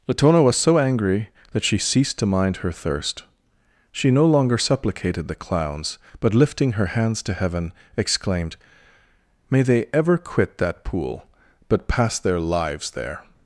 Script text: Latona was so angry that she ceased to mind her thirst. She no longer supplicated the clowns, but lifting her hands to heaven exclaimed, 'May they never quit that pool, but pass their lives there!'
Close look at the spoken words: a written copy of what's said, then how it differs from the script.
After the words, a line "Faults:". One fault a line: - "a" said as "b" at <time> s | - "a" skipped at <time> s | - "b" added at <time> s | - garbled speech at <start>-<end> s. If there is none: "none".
Latona was so angry that she ceased to mind her thirst. She no longer supplicated the clowns, but lifting her hands to heaven exclaimed, 'May they ever quit that pool, but pass their lives there!'
Faults:
- "never" said as "ever" at 9.9 s